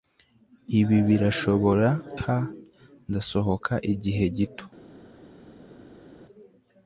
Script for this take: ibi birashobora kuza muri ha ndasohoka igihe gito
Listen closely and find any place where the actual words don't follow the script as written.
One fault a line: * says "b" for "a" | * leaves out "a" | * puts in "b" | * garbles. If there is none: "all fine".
* leaves out "kuza muri"